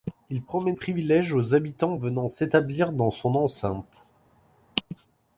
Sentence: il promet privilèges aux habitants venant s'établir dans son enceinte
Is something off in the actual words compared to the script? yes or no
no